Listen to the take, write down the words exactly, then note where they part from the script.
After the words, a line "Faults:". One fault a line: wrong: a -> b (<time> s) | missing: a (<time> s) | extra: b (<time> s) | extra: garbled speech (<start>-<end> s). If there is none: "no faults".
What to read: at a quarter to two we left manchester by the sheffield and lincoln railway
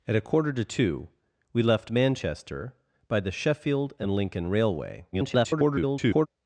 at a quarter to two we left manchester by the sheffield and lincoln railway [garbled]
Faults:
extra: garbled speech (5.1-6.3 s)